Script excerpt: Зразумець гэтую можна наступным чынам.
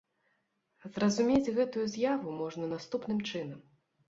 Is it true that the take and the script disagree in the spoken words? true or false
true